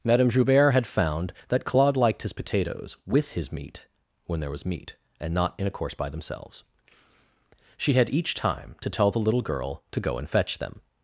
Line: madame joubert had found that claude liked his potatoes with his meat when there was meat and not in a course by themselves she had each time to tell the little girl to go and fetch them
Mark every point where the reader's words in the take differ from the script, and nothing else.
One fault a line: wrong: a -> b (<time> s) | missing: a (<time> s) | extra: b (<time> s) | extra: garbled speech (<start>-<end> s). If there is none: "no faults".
no faults